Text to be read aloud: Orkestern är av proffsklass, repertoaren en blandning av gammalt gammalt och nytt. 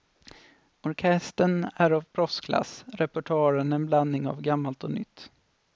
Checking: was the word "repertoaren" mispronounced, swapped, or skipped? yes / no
no